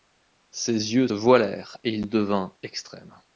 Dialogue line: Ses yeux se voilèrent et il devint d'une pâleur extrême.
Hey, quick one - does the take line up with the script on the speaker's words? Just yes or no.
no